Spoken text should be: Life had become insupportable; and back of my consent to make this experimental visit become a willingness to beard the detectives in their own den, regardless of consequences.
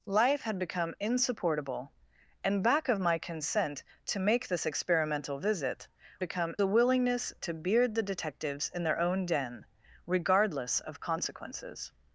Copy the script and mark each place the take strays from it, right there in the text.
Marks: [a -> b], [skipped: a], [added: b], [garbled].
Life had become insupportable; and back of my consent to make this experimental visit become a willingness to beard the detectives in their own den, regardless of consequences.